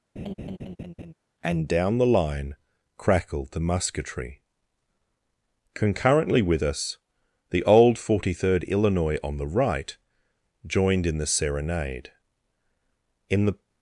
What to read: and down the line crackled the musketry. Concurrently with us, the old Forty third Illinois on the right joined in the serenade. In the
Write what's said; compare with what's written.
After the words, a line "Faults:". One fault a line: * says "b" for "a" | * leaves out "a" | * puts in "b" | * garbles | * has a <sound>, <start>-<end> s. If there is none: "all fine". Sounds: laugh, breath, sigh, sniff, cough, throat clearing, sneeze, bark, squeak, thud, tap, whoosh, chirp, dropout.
and down the line crackled the musketry. Concurrently with us, the old Forty third Illinois on the right joined in the serenade. In the
Faults:
* has a laugh, 0.2-1.1 s